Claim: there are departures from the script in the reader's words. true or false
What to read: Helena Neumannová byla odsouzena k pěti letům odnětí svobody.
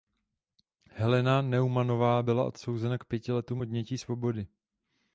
false